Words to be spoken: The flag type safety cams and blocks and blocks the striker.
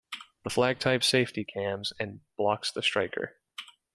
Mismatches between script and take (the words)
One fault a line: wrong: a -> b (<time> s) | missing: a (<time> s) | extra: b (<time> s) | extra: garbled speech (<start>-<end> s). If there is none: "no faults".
missing: and blocks (2.7 s)